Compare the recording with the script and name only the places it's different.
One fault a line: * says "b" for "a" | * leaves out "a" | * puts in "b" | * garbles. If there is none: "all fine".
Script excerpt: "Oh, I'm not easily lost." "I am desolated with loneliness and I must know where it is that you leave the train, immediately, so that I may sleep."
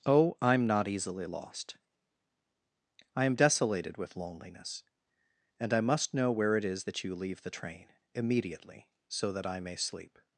all fine